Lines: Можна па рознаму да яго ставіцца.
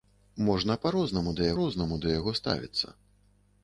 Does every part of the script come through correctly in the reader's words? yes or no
no